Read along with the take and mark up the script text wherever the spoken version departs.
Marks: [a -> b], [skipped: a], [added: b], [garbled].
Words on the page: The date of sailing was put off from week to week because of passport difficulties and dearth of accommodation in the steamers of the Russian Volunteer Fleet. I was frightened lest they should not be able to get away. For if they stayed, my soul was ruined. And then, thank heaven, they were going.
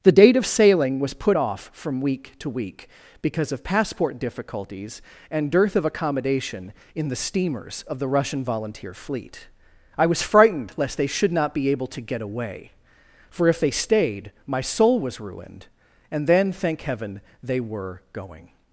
The date of sailing was put off from week to week because of passport difficulties and dearth of accommodation in the steamers of the Russian Volunteer Fleet. I was frightened lest they should not be able to get away. For if they stayed, my soul was ruined. And then, thank heaven, they were going.